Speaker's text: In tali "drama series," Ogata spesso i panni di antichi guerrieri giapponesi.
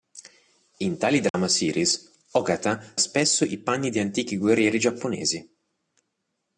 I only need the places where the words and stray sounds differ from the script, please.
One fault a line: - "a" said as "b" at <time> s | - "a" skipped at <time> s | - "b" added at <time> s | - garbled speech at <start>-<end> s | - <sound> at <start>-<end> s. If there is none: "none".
- dropout at 1.3-1.3 s